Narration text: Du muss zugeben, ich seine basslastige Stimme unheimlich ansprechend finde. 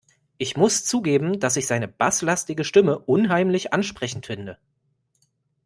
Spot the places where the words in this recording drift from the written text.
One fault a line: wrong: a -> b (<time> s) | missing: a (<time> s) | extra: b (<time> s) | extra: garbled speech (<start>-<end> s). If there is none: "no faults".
wrong: Du -> Ich (0.4 s)
extra: dass (1.4 s)